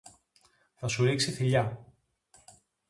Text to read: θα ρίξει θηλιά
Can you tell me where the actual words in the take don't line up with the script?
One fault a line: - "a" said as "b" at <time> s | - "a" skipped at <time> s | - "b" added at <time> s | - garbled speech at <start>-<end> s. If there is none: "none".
- "σου" added at 0.9 s